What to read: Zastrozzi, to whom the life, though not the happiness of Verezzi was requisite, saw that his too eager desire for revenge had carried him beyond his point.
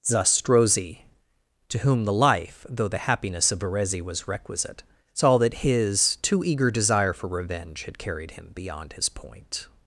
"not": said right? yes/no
no